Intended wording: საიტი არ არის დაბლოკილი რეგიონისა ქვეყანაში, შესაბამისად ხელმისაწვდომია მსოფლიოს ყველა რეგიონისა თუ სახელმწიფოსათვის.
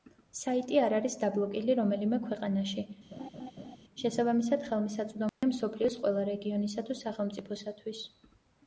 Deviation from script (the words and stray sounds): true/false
true